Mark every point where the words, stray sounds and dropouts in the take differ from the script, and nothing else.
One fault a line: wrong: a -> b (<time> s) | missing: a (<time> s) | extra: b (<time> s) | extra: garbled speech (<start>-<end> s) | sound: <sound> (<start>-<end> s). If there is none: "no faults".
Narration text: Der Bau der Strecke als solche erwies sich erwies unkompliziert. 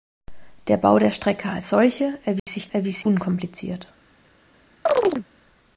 sound: dropout (2.4-2.5 s)
sound: chirp (4.9-5.3 s)